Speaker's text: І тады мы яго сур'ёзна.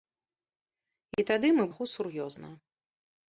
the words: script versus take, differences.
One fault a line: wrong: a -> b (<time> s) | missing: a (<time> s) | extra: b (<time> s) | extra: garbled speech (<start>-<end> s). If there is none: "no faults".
no faults